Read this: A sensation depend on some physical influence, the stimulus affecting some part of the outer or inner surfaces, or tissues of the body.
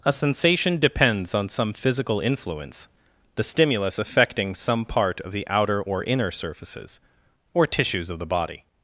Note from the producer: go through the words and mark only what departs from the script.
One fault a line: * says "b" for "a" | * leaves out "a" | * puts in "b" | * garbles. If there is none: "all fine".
* says "depends" for "depend"